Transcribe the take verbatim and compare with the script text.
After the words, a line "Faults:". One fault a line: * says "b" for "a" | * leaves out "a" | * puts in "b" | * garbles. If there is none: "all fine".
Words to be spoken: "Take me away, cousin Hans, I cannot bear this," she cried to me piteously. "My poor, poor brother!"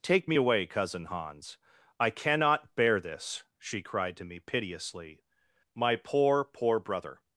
"Take me away, cousin Hans, I cannot bear this," she cried to me piteously. "My poor, poor brother!"
Faults:
all fine